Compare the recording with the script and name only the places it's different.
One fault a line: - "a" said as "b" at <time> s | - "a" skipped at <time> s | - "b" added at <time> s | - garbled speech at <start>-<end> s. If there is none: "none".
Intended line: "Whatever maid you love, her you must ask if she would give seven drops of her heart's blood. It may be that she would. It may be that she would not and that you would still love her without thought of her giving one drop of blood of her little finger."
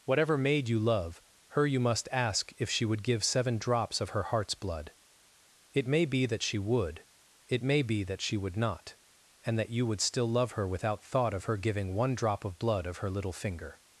none